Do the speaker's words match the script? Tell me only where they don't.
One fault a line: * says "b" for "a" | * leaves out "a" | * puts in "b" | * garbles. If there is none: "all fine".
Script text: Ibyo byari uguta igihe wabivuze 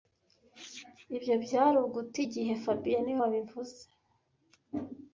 * puts in "fabien niwe"